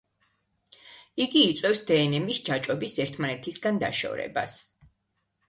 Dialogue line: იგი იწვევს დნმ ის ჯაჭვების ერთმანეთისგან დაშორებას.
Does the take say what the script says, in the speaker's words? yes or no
yes